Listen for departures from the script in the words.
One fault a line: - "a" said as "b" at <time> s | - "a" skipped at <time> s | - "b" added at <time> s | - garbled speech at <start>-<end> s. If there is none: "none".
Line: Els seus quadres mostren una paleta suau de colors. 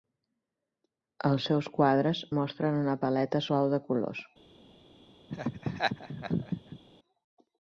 none